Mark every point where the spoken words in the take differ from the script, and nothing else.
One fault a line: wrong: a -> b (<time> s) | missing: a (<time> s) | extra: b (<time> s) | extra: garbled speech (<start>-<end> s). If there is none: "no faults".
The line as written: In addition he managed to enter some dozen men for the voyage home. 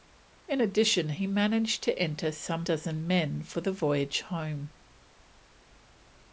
no faults